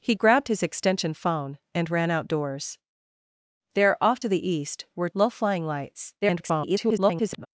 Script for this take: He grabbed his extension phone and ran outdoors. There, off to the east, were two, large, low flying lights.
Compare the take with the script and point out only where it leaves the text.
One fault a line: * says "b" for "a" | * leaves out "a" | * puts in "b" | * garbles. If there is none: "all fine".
* leaves out "two large"
* garbles